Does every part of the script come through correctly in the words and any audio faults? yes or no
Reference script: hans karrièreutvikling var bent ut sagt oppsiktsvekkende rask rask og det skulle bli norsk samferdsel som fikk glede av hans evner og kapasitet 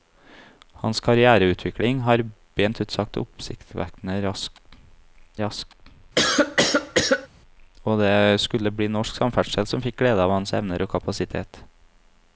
no